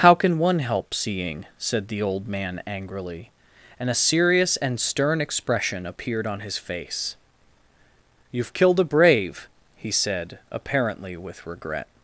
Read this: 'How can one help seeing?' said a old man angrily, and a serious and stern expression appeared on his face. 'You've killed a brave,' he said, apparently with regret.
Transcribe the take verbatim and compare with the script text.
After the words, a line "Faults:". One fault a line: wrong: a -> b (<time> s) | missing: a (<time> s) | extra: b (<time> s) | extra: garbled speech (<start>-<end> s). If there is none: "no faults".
'How can one help seeing?' said the old man angrily, and a serious and stern expression appeared on his face. 'You've killed a brave,' he said, apparently with regret.
Faults:
wrong: a -> the (1.9 s)